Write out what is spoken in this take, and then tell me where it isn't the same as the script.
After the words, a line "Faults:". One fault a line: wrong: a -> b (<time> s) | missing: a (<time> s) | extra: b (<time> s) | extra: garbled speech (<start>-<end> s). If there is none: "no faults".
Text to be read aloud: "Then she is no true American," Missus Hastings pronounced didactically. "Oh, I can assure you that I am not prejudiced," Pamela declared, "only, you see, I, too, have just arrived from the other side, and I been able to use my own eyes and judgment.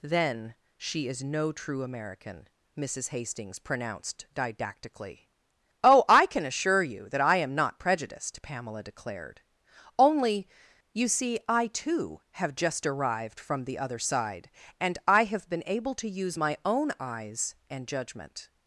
"Then she is no true American," Missus Hastings pronounced didactically. "Oh, I can assure you that I am not prejudiced," Pamela declared, "only, you see, I, too, have just arrived from the other side, and I have been able to use my own eyes and judgment.
Faults:
extra: have (15.2 s)